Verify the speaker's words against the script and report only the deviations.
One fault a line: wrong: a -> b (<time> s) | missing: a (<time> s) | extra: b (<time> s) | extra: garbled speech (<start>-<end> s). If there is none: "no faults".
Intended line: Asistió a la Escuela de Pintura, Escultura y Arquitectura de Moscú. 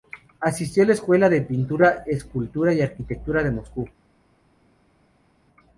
no faults